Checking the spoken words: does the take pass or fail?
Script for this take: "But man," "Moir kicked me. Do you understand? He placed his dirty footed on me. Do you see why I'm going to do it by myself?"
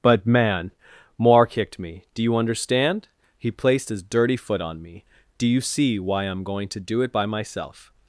fail